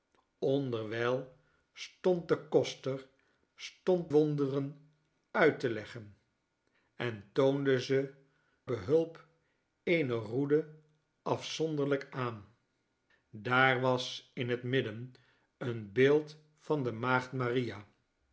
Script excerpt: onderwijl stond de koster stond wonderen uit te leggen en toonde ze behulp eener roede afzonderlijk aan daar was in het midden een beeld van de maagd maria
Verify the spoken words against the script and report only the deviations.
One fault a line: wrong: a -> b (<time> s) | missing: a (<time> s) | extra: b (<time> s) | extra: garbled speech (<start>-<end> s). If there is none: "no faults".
no faults